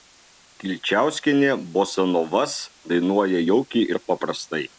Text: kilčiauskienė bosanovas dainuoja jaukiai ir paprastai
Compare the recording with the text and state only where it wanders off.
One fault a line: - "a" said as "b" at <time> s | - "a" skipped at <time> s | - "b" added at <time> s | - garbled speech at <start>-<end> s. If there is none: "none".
none